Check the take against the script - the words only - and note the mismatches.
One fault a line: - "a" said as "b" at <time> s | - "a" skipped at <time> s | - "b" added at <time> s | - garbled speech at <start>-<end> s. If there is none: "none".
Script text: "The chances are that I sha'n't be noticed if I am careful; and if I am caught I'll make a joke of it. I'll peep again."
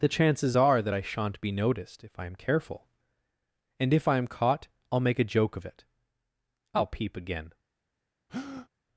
none